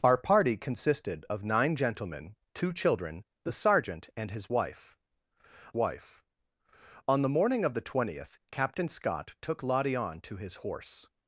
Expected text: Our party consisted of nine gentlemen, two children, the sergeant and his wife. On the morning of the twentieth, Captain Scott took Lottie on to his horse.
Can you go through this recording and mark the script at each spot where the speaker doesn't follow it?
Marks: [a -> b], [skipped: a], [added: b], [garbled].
Our party consisted of nine gentlemen, two children, the sergeant and his wife. [added: wife] On the morning of the twentieth, Captain Scott took Lottie on to his horse.